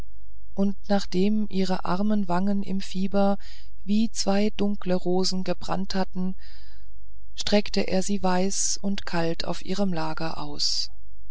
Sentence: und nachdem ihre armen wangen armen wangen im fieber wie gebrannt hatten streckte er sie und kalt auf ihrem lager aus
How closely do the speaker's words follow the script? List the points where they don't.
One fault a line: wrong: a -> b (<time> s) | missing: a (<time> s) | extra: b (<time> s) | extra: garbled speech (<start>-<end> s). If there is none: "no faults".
missing: armen wangen (2.6 s)
extra: zwei dunkle rosen (4.1 s)
extra: weiß (8.2 s)